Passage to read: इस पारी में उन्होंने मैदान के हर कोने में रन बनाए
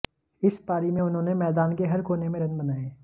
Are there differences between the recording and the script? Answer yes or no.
no